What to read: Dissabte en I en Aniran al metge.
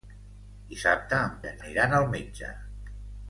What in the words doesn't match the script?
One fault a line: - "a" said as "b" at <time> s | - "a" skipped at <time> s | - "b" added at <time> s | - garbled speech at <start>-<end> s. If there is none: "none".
none